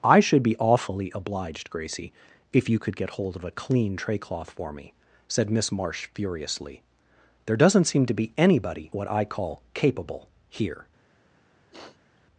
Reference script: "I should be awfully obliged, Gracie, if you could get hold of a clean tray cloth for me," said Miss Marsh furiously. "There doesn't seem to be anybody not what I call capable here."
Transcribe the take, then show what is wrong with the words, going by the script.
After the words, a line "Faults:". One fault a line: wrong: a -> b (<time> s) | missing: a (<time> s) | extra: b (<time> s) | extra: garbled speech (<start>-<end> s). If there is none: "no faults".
"I should be awfully obliged, Gracie, if you could get hold of a clean tray cloth for me," said Miss Marsh furiously. "There doesn't seem to be anybody what I call capable here."
Faults:
missing: not (8.9 s)